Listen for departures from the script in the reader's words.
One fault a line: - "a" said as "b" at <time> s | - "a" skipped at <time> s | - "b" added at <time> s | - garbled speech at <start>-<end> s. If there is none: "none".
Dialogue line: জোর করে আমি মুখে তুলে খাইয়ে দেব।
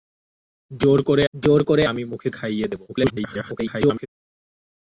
- "জোর করে" added at 1.3 s
- "তুলে" skipped at 2.3 s
- garbled speech at 2.9-4.1 s